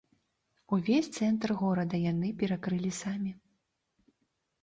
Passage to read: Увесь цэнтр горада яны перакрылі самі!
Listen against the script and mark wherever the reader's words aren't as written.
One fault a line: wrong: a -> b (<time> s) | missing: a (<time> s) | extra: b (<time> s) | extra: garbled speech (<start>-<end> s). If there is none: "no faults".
no faults